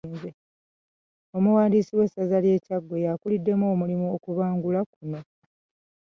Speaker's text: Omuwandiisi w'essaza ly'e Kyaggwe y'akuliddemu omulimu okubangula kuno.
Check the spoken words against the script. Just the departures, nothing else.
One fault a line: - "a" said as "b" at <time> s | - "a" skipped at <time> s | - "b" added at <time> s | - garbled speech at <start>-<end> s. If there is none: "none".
none